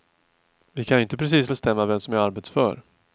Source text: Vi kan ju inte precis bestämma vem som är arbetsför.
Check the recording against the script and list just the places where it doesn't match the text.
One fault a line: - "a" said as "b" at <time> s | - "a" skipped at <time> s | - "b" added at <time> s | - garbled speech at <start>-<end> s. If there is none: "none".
none